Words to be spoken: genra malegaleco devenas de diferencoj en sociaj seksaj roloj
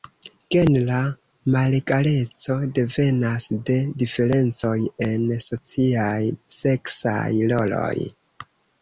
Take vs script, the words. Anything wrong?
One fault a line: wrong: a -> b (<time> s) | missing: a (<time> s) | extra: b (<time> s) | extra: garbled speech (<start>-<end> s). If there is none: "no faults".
no faults